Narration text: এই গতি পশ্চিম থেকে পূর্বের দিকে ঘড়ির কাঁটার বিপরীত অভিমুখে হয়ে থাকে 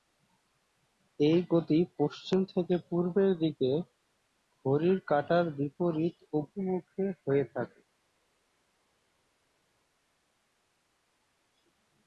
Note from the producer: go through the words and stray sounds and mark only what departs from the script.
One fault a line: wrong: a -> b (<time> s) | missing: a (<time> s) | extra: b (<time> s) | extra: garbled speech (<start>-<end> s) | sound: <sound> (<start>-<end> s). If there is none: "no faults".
no faults